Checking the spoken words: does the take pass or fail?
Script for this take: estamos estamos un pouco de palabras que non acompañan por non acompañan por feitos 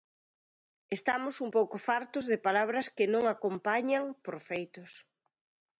fail